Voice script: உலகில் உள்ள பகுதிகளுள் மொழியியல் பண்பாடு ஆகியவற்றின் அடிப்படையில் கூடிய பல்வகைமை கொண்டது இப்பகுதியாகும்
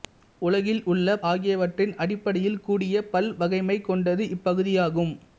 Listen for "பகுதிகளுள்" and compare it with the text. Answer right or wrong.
wrong